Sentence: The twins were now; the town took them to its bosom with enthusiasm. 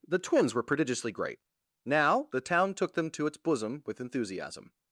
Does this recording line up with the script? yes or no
no